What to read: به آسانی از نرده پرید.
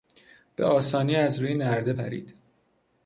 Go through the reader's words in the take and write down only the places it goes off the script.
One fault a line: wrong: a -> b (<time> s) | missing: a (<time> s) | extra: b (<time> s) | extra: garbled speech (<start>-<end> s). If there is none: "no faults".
extra: روی (1.4 s)